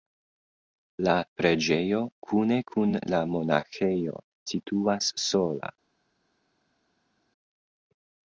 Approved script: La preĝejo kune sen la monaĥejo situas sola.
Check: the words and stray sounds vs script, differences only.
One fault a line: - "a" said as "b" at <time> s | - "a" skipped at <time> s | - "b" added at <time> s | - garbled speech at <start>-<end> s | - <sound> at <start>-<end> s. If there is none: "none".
- "sen" said as "kun" at 2.7 s